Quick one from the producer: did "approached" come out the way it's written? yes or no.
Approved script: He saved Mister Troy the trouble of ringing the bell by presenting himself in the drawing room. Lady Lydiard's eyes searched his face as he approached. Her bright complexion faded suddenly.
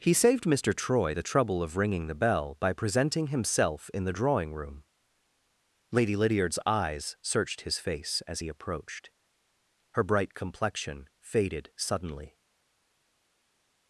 yes